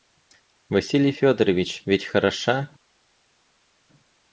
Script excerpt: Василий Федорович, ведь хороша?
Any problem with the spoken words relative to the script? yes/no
no